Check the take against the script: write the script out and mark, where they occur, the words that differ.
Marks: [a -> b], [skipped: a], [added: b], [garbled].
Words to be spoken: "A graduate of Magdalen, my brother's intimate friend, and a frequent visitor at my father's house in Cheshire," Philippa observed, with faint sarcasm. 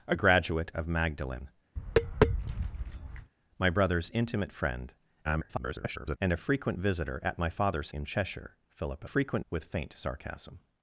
"A graduate of Magdalen, my brother's intimate friend, [garbled] and a frequent visitor at my father's [skipped: house] in Cheshire," Philippa [observed, -> frequent] with faint sarcasm.